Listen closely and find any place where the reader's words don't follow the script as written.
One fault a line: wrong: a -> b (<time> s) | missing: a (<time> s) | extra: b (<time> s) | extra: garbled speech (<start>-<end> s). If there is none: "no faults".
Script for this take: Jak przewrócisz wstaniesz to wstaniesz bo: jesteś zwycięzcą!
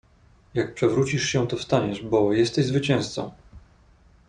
wrong: wstaniesz -> się (1.2 s)